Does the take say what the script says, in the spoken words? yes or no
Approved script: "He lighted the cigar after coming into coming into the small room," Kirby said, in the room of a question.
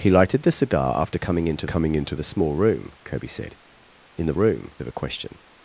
yes